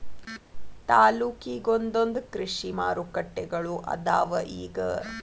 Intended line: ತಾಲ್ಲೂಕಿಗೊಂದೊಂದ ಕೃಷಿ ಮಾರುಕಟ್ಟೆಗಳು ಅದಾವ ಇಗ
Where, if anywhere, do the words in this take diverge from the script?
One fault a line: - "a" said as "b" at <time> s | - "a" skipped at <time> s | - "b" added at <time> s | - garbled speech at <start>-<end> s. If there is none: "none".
none